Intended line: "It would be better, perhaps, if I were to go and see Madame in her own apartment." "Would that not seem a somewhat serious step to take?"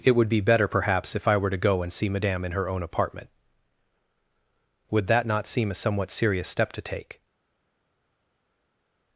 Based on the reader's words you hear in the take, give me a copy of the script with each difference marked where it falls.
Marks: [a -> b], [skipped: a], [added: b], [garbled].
"It would be better, perhaps, if I were to go and see Madame in her own apartment." "Would that not seem a somewhat serious step to take?"